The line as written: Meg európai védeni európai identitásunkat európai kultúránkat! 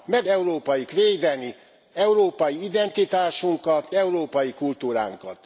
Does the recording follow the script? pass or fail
pass